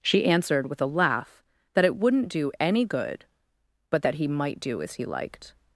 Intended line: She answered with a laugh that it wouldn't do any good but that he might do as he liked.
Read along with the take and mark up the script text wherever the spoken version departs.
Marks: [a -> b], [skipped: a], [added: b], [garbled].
She answered with a laugh that it wouldn't do any good but that he might do as he liked.